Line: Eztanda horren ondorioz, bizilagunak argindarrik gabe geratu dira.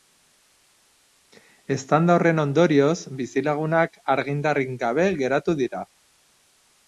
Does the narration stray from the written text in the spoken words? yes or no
no